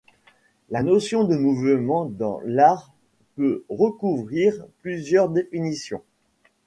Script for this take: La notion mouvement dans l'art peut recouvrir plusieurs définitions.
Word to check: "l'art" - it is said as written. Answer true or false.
true